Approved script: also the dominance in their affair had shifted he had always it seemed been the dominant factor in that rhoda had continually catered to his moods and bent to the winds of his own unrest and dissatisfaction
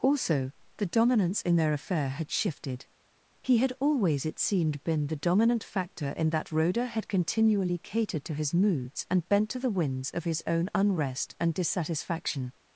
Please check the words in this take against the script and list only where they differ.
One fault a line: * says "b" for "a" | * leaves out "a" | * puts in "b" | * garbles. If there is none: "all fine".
all fine